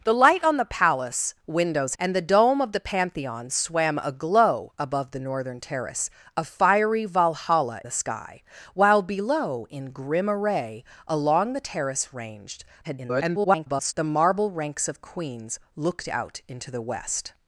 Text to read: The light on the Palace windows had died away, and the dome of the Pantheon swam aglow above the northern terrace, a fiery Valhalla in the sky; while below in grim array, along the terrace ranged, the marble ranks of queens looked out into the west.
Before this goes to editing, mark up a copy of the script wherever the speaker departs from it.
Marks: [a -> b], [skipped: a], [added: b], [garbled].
The light on the Palace windows [skipped: had died away,] and the dome of the Pantheon swam aglow above the northern terrace, a fiery Valhalla [skipped: in] the sky; while below in grim array, along the terrace ranged, [garbled] the marble ranks of queens looked out into the west.